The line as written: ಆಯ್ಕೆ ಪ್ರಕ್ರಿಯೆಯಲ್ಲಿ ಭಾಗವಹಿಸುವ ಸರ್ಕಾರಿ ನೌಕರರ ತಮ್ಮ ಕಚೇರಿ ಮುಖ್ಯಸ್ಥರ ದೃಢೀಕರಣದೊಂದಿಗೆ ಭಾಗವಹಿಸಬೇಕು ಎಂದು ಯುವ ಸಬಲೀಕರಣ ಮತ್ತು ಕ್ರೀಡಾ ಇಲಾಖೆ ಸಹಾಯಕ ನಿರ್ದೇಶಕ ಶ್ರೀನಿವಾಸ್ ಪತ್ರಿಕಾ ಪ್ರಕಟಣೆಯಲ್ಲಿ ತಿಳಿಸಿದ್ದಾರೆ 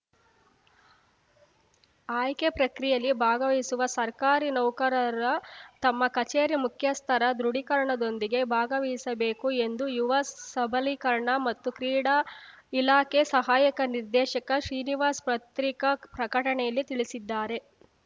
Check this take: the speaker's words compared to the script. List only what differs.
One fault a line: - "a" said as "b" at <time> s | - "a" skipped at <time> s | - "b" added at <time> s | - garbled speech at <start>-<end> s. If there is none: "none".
none